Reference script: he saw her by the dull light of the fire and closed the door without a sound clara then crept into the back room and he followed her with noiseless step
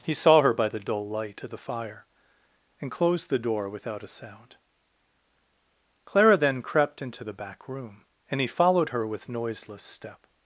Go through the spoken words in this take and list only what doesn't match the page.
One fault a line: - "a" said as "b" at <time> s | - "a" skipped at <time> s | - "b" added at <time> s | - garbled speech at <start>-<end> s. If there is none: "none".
none